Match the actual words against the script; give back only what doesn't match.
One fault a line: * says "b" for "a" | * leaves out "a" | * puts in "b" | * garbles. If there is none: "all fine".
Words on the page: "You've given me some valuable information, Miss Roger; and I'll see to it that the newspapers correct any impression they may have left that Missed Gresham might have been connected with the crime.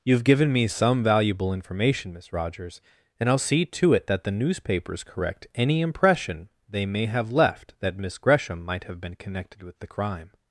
* says "Rogers" for "Roger"
* says "Miss" for "Missed"